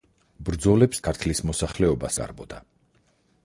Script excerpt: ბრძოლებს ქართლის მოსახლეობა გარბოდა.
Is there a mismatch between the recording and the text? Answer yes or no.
no